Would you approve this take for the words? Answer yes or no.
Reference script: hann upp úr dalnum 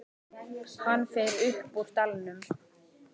no